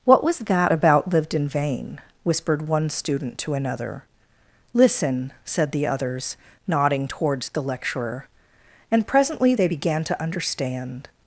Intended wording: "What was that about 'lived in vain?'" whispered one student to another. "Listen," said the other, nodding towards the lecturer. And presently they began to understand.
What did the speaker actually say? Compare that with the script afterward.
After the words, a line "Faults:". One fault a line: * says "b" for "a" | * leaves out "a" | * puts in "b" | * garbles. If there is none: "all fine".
"What was that about 'lived in vain?'" whispered one student to another. "Listen," said the others, nodding towards the lecturer. And presently they began to understand.
Faults:
* says "others" for "other"